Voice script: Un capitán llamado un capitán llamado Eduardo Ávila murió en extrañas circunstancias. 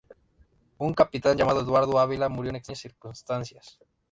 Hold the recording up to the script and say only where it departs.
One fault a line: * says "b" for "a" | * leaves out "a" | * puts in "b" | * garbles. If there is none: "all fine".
* leaves out "un capitán llamado"